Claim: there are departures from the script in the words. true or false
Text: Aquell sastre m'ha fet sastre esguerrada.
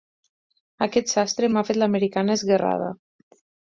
true